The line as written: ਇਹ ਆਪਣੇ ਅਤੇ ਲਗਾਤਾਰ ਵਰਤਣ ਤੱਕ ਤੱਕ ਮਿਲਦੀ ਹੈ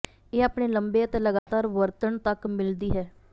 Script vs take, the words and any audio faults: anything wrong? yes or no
yes